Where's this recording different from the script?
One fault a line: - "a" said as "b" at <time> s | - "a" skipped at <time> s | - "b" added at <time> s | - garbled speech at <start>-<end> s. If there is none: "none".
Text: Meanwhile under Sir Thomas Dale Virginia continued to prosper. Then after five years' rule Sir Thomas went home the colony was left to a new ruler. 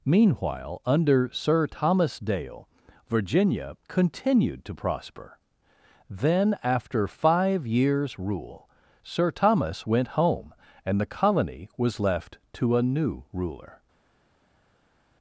- "and" added at 10.8 s